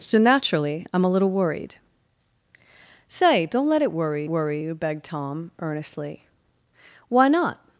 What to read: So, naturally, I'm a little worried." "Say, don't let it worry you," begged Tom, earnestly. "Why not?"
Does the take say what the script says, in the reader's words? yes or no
no